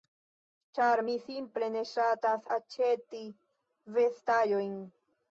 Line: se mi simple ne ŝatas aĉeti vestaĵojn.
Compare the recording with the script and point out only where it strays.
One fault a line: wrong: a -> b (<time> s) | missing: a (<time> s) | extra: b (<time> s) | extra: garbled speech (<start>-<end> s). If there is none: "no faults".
wrong: se -> ĉar (0.8 s)